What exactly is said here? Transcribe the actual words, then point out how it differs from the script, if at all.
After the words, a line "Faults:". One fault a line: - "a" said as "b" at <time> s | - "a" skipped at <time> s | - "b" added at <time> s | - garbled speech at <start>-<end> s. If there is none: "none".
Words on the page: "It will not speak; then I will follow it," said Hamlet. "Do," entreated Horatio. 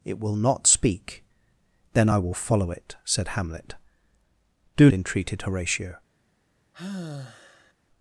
"It will not speak; then I will follow it," said Hamlet. "Do," entreated Horatio.
Faults:
none